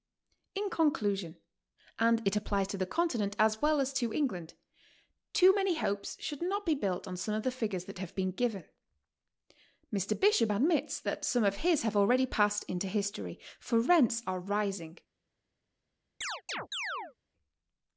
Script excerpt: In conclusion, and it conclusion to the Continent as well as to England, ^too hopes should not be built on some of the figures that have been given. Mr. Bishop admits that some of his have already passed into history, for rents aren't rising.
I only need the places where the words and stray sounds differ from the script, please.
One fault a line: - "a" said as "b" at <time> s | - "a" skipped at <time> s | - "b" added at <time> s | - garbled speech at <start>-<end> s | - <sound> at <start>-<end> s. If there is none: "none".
- "conclusion" said as "applies" at 2.4 s
- "many" added at 5.5 s
- "aren't" said as "are" at 14.2 s
- chirp at 16.2-17.1 s